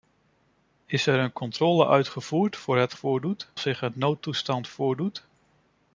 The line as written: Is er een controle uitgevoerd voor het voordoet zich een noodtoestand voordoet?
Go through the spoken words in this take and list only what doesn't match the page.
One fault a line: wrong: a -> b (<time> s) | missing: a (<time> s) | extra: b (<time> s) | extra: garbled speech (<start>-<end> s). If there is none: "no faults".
no faults